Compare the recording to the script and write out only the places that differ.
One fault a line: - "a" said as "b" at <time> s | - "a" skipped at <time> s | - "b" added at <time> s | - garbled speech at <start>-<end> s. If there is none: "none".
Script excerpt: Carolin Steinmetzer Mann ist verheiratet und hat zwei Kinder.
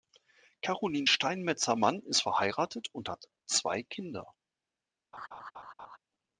none